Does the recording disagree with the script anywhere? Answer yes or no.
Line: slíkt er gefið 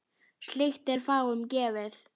yes